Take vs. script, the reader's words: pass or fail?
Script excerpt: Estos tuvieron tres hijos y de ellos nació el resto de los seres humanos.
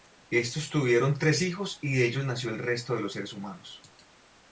pass